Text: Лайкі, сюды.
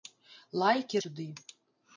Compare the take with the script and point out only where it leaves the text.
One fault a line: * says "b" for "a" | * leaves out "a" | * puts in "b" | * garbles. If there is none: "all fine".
all fine